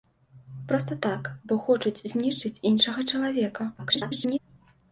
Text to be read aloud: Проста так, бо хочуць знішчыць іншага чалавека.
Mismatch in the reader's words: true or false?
true